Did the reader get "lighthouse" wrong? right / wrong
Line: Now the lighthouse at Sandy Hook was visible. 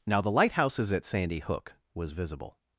wrong